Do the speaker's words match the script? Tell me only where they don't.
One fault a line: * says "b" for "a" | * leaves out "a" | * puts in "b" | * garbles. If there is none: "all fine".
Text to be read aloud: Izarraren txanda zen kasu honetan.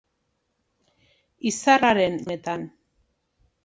* leaves out "txanda zen kasu"